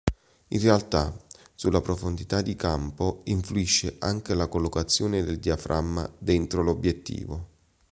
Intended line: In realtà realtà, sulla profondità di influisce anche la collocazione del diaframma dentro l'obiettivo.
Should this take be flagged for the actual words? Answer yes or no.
yes